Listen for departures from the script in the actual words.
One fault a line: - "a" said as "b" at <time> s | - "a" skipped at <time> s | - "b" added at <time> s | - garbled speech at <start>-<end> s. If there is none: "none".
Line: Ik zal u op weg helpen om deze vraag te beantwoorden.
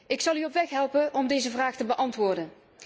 none